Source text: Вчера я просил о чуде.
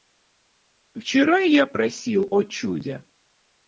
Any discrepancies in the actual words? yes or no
no